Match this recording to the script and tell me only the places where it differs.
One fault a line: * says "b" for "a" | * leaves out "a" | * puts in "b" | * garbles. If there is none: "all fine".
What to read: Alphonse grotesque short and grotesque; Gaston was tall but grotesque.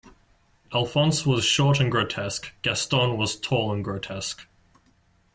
* says "was" for "grotesque"
* says "and" for "but"